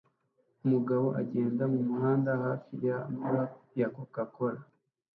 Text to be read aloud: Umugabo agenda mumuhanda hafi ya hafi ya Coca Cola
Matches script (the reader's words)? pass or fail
fail